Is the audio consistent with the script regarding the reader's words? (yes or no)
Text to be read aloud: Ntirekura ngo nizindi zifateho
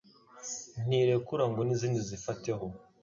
yes